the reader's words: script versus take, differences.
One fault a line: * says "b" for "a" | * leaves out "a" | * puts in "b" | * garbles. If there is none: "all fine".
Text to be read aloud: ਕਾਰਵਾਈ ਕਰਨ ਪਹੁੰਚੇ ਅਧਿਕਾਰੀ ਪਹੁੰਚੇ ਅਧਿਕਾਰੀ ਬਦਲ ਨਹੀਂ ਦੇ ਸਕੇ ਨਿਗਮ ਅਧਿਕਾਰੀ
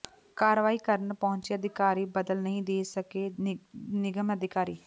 * leaves out "ਪਹੁੰਚੇ ਅਧਿਕਾਰੀ"